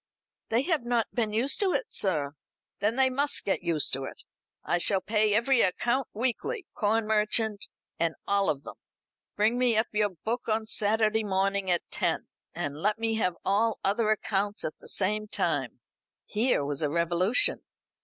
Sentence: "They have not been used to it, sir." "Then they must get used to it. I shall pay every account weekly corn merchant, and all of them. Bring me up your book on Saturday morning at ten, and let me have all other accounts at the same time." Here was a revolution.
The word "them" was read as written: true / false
true